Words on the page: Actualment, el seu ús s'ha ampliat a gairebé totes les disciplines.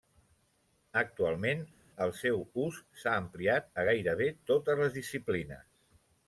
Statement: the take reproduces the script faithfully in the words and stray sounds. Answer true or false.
true